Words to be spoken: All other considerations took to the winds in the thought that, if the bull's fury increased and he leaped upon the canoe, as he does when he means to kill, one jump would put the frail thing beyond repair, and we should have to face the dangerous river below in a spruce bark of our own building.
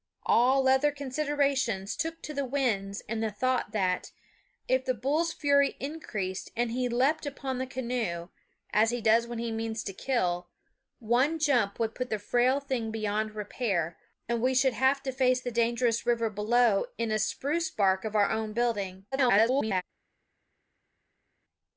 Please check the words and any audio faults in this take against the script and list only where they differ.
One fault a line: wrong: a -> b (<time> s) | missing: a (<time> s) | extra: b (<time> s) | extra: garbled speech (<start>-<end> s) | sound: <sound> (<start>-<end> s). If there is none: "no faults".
extra: garbled speech (19.1-19.8 s)